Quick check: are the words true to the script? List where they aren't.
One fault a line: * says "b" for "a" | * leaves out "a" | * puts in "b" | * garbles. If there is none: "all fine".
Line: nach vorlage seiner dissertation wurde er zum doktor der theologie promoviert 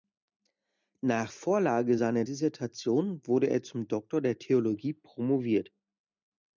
all fine